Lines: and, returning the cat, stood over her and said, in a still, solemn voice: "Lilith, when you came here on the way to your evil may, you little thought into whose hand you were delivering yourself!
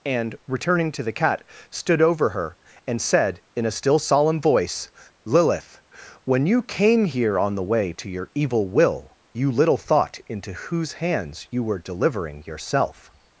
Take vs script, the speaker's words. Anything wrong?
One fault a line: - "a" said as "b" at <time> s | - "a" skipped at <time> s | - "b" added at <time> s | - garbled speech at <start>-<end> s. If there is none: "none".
- "to" added at 0.9 s
- "may" said as "will" at 8.7 s
- "hand" said as "hands" at 10.9 s